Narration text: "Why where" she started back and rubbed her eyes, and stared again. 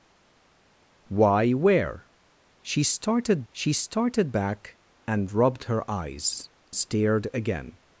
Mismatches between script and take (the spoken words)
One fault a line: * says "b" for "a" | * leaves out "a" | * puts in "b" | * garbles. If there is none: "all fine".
* puts in "she started"
* leaves out "and"